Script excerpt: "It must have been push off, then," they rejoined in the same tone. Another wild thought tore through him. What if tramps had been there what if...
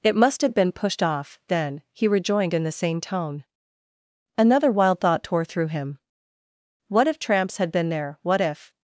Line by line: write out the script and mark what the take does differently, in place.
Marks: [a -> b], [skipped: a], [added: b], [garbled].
"It must have been [push -> pushed] off, then," [they -> he] rejoined in the same tone. Another wild thought tore through him. What if tramps had been there what if...